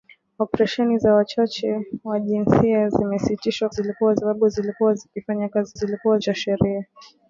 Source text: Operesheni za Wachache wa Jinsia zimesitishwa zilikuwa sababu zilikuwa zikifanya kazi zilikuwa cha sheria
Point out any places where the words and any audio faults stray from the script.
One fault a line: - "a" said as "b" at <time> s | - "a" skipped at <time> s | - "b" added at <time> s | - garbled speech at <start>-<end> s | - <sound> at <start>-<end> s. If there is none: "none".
none